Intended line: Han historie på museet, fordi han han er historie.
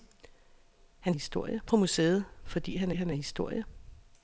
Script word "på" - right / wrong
right